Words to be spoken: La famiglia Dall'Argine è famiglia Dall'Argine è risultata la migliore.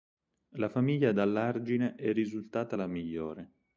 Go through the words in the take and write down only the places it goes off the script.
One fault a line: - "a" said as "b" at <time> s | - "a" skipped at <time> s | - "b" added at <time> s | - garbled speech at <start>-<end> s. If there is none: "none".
- "famiglia Dall'Argine è" skipped at 2.1 s